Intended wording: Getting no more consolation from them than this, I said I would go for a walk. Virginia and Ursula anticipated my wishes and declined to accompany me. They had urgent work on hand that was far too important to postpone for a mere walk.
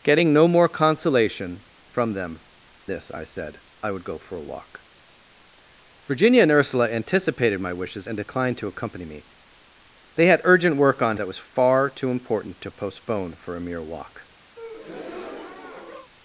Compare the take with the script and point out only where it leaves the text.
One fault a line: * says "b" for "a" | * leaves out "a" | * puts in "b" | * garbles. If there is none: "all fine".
* leaves out "than"
* leaves out "hand"